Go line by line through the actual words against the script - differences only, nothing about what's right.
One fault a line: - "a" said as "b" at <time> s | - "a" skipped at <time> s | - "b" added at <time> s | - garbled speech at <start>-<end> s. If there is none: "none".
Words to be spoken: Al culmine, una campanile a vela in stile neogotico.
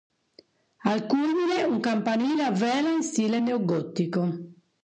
- "una" said as "un" at 1.6 s